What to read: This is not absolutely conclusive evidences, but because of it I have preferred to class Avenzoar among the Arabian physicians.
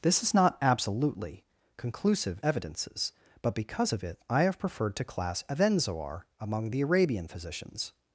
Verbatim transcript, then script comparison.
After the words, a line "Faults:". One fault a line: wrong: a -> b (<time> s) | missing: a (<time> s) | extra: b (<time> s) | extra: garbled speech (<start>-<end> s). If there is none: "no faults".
This is not absolutely conclusive evidences, but because of it I have preferred to class Avenzoar among the Arabian physicians.
Faults:
no faults